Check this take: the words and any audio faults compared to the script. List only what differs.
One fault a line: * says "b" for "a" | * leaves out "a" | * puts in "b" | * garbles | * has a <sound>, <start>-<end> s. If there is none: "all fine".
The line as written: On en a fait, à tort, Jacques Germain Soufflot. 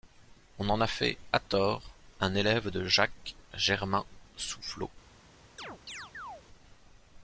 * puts in "un élève de"
* has a chirp, 5.6-6.4 s